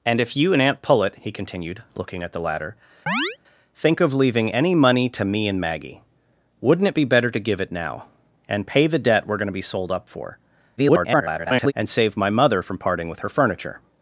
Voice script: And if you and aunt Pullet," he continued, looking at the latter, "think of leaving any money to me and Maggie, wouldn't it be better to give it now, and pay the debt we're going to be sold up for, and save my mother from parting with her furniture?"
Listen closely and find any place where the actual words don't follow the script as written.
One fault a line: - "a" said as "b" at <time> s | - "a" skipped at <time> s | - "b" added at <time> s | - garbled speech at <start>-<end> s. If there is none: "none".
- garbled speech at 10.8-11.7 s